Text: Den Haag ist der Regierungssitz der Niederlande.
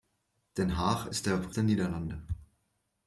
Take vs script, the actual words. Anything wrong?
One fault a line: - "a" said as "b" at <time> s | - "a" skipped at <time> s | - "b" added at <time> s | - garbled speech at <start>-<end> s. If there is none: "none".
- "Regierungssitz" skipped at 1.5 s